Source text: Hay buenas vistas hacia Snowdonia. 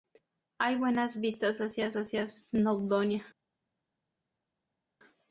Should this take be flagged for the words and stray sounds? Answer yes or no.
yes